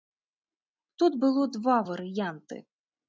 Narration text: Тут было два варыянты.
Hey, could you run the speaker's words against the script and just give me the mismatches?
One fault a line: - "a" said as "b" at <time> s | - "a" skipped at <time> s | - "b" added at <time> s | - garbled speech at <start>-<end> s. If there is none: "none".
none